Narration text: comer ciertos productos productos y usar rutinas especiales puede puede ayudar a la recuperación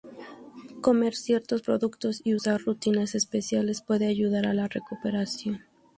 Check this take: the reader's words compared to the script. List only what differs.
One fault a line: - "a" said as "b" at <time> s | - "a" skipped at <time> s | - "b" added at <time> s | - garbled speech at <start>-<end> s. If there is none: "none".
- "productos" skipped at 2.2 s
- "puede" skipped at 4.1 s